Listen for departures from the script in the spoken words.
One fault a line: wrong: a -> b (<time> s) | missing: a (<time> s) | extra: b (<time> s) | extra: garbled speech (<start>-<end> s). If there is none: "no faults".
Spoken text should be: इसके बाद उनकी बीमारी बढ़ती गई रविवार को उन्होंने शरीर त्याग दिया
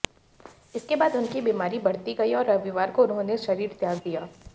extra: और (2.3 s)